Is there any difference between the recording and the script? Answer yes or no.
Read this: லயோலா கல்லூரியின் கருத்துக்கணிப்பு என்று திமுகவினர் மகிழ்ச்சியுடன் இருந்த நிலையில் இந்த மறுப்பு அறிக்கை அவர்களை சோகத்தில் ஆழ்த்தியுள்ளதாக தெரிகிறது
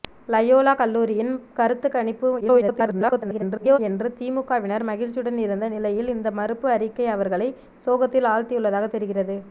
yes